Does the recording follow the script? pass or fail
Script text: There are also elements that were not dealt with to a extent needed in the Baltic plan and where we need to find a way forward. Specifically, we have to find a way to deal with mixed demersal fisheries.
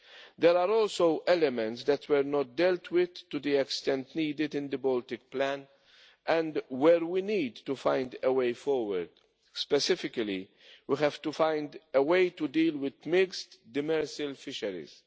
fail